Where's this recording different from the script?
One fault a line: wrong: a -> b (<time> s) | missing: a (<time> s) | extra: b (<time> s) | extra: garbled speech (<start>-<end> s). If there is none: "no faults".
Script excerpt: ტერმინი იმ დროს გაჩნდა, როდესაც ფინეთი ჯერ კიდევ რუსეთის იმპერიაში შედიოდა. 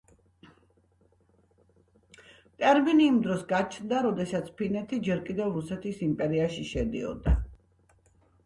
no faults